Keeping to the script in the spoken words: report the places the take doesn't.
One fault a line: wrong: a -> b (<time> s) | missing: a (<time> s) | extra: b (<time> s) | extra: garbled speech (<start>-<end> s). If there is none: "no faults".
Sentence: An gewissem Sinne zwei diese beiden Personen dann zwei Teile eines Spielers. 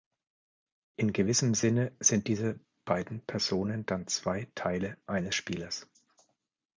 wrong: An -> In (0.9 s)
wrong: zwei -> sind (2.0 s)